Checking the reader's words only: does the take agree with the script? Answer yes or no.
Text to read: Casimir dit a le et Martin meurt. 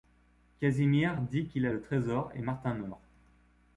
no